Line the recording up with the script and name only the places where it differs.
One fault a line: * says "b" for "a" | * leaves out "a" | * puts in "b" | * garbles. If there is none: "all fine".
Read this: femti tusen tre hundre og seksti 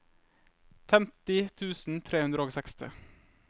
all fine